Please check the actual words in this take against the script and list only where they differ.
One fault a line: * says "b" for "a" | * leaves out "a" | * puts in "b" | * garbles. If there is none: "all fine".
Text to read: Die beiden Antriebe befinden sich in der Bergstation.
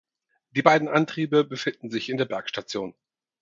all fine